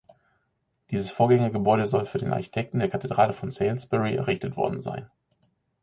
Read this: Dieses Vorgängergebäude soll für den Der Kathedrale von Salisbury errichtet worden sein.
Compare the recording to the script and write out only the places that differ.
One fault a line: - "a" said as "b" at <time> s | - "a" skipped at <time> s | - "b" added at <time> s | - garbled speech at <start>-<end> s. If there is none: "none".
- "Architekten" added at 2.3 s